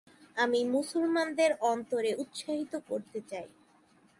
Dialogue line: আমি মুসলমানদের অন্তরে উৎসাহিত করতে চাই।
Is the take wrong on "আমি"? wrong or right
right